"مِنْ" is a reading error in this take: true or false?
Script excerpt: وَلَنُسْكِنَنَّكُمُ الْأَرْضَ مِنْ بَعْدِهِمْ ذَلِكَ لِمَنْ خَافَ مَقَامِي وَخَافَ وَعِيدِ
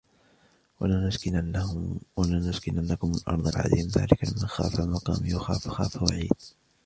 true